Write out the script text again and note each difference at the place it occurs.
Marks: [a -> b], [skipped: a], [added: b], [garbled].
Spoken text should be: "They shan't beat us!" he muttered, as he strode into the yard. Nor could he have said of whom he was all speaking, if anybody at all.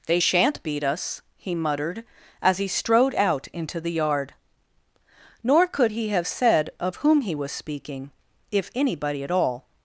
"They shan't beat us!" he muttered, as he strode [added: out] into the yard. Nor could he have said of whom he was [skipped: all] speaking, if anybody at all.